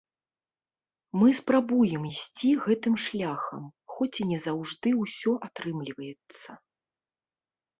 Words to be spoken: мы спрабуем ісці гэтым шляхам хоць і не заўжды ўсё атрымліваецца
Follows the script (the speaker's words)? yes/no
yes